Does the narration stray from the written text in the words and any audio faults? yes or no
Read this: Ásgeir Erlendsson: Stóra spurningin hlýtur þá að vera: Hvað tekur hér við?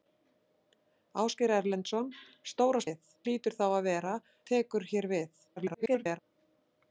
yes